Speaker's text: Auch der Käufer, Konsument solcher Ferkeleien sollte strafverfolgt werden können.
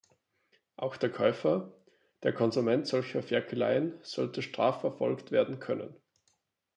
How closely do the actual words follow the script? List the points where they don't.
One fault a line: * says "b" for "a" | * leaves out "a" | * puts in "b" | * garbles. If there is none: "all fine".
* puts in "der"